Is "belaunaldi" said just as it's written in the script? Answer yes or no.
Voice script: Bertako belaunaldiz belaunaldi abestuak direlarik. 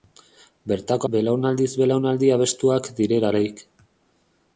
yes